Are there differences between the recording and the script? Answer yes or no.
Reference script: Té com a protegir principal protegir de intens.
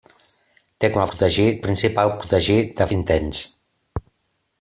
no